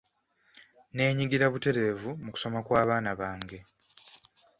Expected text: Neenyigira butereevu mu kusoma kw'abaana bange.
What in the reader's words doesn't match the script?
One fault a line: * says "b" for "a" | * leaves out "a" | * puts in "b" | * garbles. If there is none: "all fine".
all fine